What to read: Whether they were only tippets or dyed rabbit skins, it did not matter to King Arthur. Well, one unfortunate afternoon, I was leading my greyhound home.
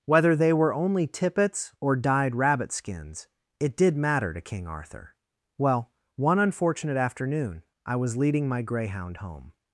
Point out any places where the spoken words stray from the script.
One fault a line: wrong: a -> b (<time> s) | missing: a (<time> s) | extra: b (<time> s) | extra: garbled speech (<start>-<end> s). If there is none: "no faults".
missing: not (4.0 s)